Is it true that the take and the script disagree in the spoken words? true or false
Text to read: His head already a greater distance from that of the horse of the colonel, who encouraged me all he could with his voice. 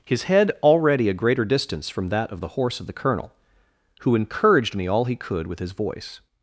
false